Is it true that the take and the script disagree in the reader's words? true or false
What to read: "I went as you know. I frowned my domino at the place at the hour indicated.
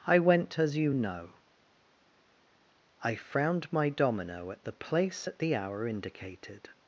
false